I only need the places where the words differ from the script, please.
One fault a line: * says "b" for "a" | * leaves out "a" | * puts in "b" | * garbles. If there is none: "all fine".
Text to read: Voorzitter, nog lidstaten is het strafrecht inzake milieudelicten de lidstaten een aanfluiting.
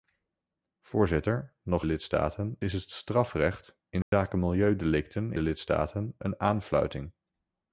all fine